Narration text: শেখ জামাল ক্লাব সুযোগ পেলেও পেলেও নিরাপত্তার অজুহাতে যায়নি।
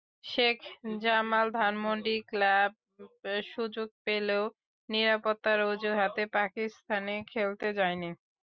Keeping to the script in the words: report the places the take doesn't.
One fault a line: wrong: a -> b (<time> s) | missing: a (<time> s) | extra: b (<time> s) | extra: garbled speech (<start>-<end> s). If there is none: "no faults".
extra: ধানমন্ডি (1.5 s)
missing: পেলেও (4.4 s)
extra: পাকিস্তানে খেলতে (6.3 s)